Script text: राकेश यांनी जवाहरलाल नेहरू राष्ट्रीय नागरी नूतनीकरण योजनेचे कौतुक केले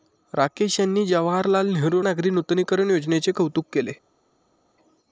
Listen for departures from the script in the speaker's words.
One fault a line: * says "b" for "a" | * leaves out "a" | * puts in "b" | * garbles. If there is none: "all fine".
* leaves out "राष्ट्रीय"